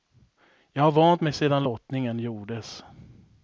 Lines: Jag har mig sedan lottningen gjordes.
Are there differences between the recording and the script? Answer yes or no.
yes